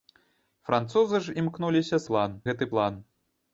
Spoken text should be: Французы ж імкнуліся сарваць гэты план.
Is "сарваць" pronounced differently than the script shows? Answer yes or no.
yes